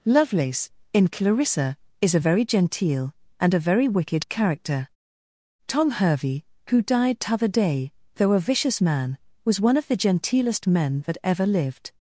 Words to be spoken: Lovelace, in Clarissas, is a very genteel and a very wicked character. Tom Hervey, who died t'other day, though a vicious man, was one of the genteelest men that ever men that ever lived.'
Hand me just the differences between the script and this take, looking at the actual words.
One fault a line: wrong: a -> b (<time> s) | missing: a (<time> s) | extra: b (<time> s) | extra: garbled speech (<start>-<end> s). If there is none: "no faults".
wrong: Clarissas -> Clarissa (1.1 s)
missing: men that ever (11.4 s)